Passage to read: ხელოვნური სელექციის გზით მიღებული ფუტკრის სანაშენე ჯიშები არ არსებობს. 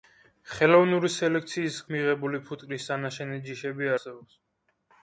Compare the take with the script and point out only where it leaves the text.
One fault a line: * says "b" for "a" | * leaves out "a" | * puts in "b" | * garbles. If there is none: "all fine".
* leaves out "გზით"
* leaves out "არ"